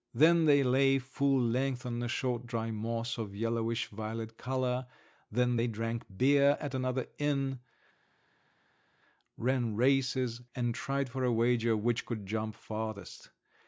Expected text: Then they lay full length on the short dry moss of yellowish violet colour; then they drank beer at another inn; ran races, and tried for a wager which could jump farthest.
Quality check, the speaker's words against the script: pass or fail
pass